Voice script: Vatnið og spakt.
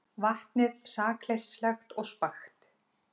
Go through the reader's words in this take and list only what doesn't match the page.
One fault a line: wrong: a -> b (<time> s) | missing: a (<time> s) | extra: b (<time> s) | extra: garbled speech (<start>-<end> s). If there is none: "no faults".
extra: sakleysislegt (0.9 s)